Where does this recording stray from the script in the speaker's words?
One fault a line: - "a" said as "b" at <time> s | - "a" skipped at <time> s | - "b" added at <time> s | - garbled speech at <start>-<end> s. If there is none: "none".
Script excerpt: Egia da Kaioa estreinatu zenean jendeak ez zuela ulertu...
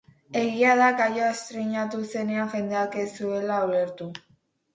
none